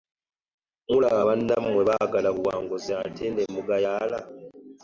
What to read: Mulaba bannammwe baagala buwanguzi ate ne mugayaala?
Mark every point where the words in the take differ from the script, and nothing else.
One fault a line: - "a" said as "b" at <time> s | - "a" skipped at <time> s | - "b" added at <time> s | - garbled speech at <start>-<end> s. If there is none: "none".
none